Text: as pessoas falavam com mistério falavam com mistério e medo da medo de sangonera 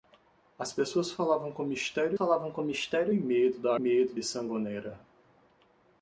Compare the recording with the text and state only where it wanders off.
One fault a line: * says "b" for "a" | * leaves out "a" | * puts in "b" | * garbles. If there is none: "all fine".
all fine